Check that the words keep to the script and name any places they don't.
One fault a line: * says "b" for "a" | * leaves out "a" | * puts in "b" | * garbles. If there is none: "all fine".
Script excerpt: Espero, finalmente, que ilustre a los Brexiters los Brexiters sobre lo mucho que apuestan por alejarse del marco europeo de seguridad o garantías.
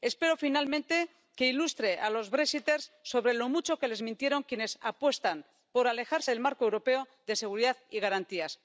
* leaves out "los Brexiters"
* puts in "les mintieron quienes"
* says "y" for "o"